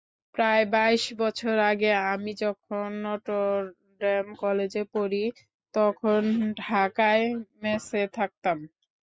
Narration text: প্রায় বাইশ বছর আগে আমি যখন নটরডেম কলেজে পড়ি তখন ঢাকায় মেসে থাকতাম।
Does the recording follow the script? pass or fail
pass